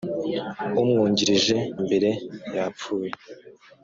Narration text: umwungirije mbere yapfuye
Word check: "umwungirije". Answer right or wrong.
right